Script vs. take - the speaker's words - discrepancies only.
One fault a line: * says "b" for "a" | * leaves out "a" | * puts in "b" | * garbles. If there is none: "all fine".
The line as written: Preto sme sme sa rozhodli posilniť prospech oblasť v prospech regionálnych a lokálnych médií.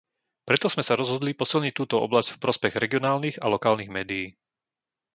* leaves out "sme"
* says "túto" for "prospech"